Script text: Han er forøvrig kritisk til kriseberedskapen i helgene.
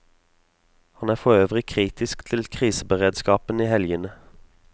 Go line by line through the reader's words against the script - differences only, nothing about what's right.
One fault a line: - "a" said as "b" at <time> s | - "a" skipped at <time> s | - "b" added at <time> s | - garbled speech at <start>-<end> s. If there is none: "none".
none